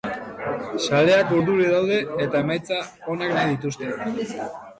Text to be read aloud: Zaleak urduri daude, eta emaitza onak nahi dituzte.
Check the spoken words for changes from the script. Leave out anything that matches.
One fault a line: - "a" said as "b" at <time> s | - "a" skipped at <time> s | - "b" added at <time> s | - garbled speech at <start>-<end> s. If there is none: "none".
none